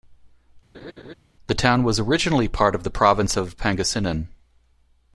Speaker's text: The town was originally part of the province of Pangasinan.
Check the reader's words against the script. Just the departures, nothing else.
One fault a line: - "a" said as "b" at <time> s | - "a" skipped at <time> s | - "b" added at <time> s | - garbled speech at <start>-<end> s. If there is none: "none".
none